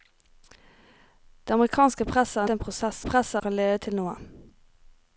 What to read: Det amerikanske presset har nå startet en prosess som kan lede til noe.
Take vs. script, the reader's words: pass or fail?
fail